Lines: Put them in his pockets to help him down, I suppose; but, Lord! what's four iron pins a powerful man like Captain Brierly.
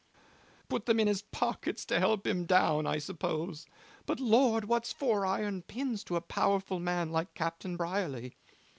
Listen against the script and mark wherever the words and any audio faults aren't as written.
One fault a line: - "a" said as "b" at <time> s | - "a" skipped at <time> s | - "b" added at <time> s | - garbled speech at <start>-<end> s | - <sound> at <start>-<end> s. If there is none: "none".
- "to" added at 6.0 s